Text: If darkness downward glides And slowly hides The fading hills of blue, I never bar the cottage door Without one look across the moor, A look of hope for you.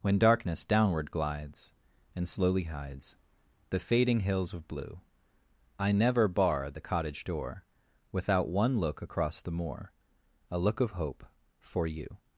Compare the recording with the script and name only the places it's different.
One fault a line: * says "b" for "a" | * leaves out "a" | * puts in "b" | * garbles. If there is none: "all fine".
* says "When" for "If"